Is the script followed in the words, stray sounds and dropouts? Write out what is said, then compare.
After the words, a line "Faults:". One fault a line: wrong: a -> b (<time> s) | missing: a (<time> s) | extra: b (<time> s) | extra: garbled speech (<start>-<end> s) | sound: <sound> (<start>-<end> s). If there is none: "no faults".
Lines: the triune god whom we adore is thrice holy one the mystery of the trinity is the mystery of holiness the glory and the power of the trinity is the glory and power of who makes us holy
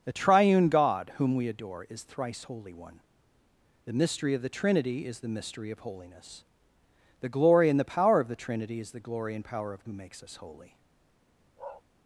the triune god whom we adore is thrice holy one the mystery of the trinity is the mystery of holiness the glory and the power of the trinity is the glory and power of who makes us holy
Faults:
sound: bark (11.6-11.8 s)